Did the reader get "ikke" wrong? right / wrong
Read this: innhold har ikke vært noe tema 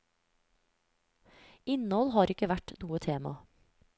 right